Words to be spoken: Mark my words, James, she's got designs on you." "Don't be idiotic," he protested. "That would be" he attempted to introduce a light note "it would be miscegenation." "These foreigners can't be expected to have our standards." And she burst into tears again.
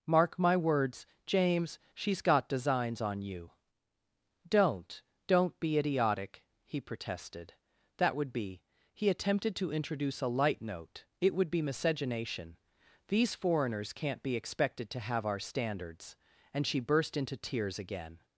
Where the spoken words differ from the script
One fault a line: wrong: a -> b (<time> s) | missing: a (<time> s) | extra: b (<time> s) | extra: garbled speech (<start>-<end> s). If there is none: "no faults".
extra: Don't (5.3 s)